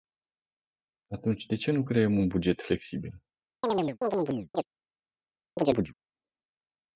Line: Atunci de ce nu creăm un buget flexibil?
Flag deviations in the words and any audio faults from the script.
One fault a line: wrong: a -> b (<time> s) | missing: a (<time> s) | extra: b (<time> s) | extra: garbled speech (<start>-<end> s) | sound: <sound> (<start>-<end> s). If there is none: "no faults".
sound: chirp (3.6-4.7 s)
sound: chirp (5.6-5.9 s)